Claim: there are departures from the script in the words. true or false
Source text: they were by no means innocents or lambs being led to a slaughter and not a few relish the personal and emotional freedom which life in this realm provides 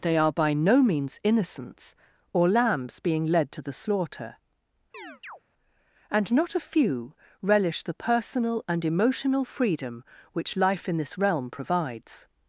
true